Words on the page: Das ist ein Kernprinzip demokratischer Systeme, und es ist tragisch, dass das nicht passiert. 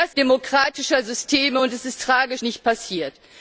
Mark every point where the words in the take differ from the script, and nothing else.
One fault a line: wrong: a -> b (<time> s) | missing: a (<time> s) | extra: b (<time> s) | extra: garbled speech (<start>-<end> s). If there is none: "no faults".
missing: ist ein Kernprinzip (0.1 s)
missing: dass das (2.4 s)